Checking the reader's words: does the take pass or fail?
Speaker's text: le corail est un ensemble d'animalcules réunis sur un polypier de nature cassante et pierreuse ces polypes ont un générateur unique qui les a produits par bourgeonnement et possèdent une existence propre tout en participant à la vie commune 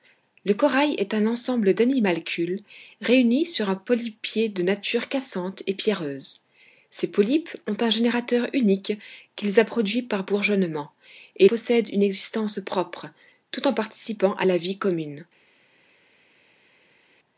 pass